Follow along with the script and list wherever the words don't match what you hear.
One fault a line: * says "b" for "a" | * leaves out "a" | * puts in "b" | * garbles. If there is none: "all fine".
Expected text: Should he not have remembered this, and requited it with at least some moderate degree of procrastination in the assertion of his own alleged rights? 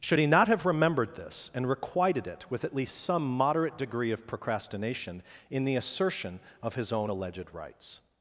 all fine